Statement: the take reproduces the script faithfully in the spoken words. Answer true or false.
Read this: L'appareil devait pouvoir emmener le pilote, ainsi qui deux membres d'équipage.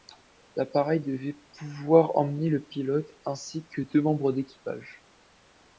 false